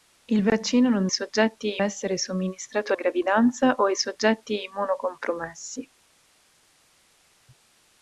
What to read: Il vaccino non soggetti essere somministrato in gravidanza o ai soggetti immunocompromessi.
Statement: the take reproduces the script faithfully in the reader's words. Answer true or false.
true